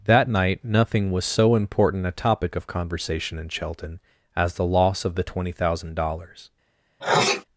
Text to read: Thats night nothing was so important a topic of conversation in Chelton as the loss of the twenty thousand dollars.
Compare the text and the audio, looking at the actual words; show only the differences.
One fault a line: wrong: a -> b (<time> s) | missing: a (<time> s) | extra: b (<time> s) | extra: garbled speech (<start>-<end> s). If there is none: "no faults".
wrong: Thats -> That (0.1 s)